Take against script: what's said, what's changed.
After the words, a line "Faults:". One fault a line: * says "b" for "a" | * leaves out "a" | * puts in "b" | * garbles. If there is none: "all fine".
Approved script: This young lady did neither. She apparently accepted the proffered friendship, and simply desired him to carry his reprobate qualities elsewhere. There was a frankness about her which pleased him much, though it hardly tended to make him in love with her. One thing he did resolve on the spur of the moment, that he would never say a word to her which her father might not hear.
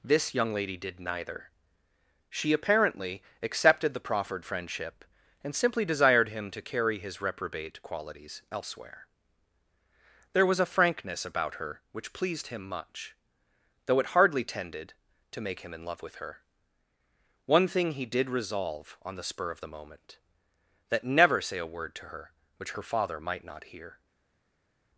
This young lady did neither. She apparently accepted the proffered friendship, and simply desired him to carry his reprobate qualities elsewhere. There was a frankness about her which pleased him much, though it hardly tended to make him in love with her. One thing he did resolve on the spur of the moment, that never say a word to her which her father might not hear.
Faults:
* leaves out "he would"